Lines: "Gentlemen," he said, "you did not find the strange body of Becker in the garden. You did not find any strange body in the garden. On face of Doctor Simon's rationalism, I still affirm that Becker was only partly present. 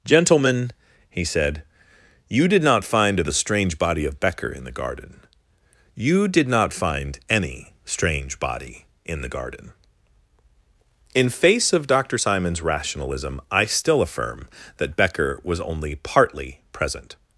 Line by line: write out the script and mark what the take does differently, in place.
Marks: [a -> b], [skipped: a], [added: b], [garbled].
"Gentlemen," he said, "you did not find the strange body of Becker in the garden. You did not find any strange body in the garden. [On -> In] face of Doctor Simon's rationalism, I still affirm that Becker was only partly present.